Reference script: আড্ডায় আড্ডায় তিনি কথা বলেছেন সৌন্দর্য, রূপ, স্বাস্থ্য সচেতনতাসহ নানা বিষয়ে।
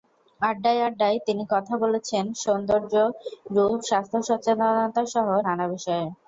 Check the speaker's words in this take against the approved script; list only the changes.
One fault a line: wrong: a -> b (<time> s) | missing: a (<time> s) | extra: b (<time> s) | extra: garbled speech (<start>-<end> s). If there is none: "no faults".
no faults